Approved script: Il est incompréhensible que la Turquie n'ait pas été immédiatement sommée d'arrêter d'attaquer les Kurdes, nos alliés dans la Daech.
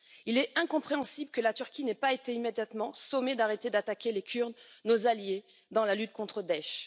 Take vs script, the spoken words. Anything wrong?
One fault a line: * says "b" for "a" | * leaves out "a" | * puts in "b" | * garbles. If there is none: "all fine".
* puts in "lutte contre"